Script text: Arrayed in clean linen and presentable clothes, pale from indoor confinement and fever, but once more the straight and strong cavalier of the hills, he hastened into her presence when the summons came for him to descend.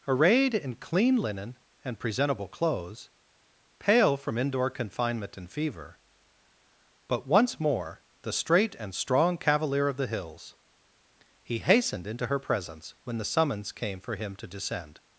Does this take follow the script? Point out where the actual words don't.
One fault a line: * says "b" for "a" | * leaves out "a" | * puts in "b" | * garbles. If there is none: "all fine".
all fine